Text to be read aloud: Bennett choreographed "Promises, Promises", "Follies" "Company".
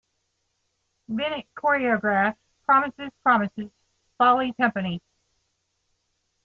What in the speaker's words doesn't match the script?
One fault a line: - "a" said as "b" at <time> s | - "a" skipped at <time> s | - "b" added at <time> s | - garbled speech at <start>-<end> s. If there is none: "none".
none